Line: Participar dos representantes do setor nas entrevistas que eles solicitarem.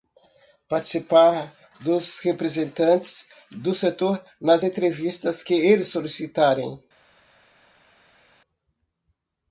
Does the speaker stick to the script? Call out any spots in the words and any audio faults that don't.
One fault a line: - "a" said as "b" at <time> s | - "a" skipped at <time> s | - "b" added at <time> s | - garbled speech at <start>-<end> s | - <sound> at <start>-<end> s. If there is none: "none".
none